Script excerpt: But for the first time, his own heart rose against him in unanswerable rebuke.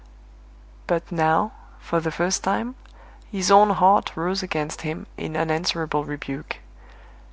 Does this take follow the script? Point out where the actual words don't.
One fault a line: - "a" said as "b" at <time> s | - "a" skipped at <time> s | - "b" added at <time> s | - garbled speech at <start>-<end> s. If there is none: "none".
- "now" added at 1.1 s